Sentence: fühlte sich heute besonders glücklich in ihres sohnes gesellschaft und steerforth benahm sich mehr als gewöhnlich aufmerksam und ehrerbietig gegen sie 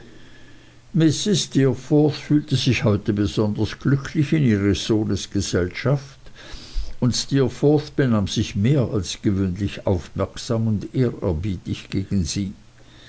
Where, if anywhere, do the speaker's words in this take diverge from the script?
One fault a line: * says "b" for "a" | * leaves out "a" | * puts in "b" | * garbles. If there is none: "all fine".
all fine